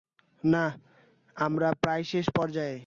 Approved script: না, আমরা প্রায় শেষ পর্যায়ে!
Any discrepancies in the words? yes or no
no